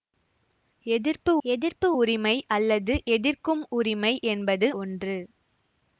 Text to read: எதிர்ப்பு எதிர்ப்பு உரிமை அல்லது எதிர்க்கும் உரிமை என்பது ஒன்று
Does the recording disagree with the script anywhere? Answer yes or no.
no